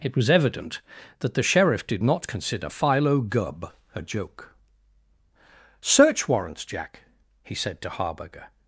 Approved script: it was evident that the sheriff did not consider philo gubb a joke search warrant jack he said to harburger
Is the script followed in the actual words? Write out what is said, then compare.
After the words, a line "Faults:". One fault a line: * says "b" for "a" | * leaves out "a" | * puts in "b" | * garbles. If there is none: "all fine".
it was evident that the sheriff did not consider philo gubb a joke search warrants jack he said to harburger
Faults:
* says "warrants" for "warrant"